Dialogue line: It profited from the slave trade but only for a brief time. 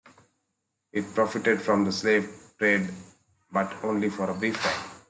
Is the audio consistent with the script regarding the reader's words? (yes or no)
yes